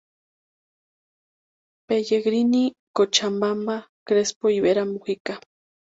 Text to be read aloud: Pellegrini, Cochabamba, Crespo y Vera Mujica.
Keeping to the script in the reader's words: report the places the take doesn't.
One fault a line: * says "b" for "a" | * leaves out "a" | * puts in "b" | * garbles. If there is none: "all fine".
all fine